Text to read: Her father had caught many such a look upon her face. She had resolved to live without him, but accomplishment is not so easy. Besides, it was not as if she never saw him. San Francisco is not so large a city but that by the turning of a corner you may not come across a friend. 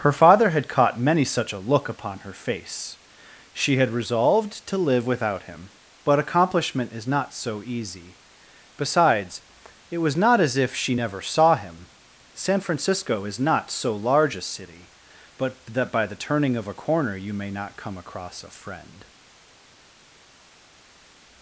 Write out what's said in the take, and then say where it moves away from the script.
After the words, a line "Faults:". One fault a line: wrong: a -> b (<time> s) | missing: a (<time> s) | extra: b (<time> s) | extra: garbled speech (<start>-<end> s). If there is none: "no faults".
Her father had caught many such a look upon her face. She had resolved to live without him, but accomplishment is not so easy. Besides, it was not as if she never saw him. San Francisco is not so large a city but that by the turning of a corner you may not come across a friend.
Faults:
no faults